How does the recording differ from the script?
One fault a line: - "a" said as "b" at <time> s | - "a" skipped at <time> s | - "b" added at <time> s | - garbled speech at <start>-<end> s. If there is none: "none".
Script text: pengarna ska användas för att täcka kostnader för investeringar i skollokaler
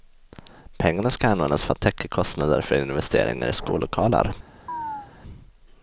none